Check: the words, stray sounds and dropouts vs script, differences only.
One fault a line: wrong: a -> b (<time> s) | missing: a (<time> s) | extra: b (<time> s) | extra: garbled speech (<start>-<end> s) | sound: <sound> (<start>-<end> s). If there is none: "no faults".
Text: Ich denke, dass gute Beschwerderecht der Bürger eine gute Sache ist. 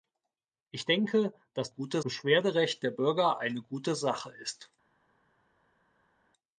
no faults